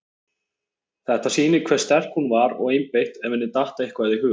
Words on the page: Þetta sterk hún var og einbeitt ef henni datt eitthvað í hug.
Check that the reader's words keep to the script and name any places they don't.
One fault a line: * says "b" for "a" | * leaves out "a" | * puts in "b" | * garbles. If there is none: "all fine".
* puts in "sýnir hve"